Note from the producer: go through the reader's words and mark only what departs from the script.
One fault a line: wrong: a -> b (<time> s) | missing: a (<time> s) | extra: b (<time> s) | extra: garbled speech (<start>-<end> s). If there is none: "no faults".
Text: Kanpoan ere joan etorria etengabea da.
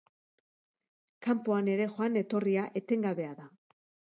no faults